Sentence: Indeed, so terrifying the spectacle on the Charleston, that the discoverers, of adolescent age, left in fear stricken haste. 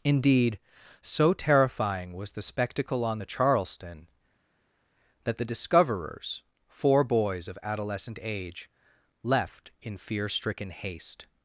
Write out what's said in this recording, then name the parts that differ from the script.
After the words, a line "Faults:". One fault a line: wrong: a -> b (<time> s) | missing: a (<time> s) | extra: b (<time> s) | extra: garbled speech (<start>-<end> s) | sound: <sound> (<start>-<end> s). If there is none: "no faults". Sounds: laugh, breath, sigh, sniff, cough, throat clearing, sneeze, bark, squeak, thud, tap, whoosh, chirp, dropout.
Indeed, so terrifying was the spectacle on the Charleston, that the discoverers, four boys of adolescent age, left in fear stricken haste.
Faults:
extra: was (2.1 s)
extra: four boys (6.7 s)